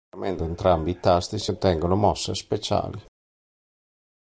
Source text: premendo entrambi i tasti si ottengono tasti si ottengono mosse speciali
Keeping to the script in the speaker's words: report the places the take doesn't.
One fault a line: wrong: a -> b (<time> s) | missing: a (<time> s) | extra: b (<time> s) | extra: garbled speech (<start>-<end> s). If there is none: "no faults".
missing: tasti si ottengono (1.9 s)